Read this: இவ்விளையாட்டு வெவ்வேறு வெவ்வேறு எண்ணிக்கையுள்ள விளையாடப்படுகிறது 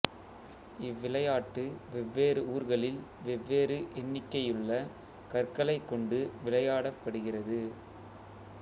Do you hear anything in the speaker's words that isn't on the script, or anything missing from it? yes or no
yes